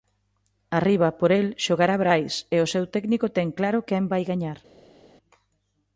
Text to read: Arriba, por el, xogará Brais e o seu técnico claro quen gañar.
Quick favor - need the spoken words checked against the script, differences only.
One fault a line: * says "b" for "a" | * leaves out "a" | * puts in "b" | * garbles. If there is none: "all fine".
* puts in "ten"
* puts in "vai"